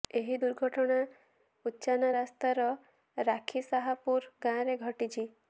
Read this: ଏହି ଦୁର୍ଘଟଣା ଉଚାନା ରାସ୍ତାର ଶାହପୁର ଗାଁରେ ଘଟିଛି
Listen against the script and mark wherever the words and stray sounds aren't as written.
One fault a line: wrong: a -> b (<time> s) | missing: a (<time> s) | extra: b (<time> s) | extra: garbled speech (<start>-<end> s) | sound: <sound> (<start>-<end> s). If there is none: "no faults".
extra: ରାଖି (3.2 s)